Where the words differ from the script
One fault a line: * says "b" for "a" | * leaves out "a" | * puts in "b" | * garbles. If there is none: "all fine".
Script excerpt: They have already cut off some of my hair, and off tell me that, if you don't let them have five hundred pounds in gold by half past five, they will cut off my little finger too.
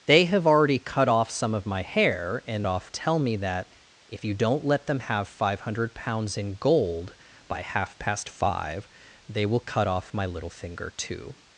all fine